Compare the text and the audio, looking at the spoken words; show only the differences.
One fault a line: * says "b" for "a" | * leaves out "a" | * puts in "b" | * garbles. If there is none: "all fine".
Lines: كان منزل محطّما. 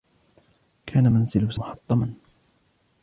all fine